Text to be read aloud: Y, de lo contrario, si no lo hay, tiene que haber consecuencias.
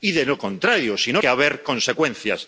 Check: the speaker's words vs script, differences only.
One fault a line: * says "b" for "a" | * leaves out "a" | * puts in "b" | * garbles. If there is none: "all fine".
* leaves out "lo hay tiene"